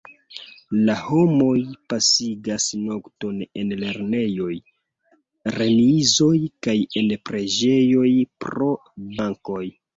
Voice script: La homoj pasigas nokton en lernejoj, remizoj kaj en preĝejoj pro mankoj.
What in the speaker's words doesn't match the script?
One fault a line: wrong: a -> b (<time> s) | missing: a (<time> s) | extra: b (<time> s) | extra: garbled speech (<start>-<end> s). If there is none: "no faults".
no faults